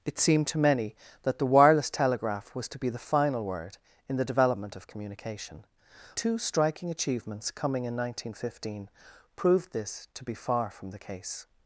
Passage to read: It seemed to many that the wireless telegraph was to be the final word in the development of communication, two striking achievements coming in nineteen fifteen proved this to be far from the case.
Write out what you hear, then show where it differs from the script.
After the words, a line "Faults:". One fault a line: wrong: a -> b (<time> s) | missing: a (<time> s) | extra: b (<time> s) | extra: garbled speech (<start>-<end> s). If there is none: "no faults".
It seemed to many that the wireless telegraph was to be the final word in the development of communication, two striking achievements coming in nineteen fifteen proved this to be far from the case.
Faults:
no faults